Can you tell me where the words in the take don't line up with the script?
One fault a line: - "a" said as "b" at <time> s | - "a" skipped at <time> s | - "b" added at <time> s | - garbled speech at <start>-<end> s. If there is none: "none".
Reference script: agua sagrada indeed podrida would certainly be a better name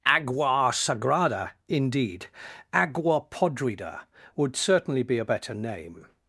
- "agua" added at 2.7 s